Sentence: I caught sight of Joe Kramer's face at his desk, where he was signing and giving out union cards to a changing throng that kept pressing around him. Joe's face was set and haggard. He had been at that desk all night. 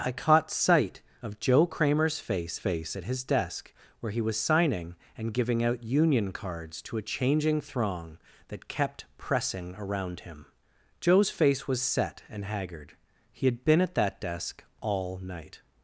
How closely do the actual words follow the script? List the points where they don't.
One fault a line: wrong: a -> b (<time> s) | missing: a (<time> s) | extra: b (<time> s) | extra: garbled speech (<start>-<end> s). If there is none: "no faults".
extra: face (2.6 s)